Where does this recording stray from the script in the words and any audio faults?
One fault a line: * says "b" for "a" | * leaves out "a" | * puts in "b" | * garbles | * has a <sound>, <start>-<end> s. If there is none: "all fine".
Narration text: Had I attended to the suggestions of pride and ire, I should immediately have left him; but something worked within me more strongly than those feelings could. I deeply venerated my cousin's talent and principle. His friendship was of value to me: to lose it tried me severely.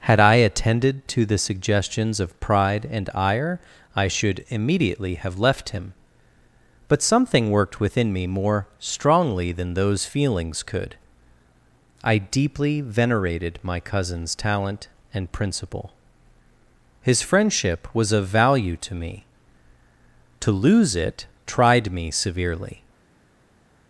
all fine